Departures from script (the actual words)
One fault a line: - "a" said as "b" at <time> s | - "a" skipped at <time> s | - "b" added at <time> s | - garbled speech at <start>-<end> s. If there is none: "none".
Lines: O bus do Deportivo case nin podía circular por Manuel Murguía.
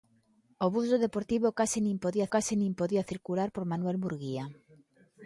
- "case nin podía" added at 2.3 s